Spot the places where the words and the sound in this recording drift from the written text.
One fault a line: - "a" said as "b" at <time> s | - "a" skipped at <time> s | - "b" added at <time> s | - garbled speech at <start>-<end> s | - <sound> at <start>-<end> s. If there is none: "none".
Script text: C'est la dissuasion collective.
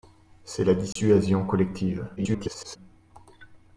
- dropout at 0.9-1.0 s
- garbled speech at 2.2-2.8 s